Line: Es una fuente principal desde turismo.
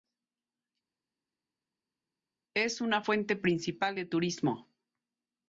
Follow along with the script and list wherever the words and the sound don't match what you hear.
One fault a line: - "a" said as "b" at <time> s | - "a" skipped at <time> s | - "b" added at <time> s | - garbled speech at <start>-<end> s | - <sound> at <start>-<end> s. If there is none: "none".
- "desde" said as "de" at 3.9 s